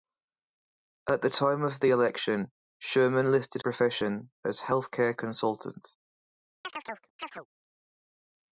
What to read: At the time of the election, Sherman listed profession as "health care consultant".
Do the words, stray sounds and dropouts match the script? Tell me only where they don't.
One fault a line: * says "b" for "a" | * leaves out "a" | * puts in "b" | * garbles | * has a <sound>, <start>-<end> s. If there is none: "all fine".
* has a chirp, 6.6-7.5 s